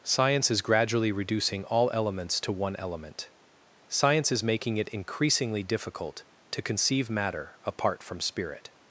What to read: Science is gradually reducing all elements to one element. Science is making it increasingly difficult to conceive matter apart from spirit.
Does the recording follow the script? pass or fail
pass